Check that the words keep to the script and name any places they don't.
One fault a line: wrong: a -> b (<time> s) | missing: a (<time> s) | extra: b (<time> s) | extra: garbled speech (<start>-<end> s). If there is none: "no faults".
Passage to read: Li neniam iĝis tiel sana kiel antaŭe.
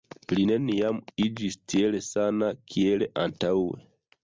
no faults